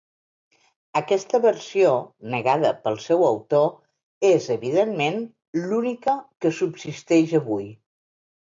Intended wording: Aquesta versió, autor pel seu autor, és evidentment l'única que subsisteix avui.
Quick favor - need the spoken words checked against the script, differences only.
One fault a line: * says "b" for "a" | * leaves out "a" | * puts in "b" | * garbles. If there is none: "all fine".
* says "negada" for "autor"